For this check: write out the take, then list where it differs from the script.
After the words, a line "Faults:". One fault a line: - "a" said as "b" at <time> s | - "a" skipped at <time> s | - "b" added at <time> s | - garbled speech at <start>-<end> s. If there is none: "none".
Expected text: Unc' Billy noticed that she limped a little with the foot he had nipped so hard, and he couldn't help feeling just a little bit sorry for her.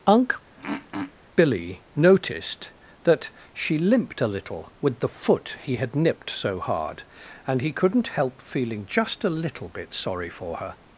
Unc' Billy noticed that she limped a little with the foot he had nipped so hard, and he couldn't help feeling just a little bit sorry for her.
Faults:
none